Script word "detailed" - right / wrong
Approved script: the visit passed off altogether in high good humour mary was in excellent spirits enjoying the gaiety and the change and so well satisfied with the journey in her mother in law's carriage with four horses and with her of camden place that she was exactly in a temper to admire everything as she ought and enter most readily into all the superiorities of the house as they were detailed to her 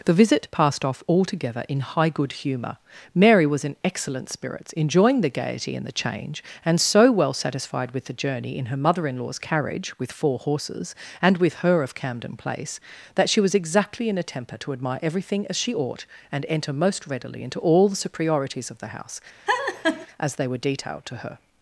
right